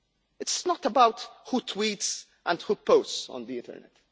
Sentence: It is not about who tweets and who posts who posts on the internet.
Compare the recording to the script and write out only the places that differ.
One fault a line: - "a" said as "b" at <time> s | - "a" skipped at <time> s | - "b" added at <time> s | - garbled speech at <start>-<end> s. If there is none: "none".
- "who posts" skipped at 3.3 s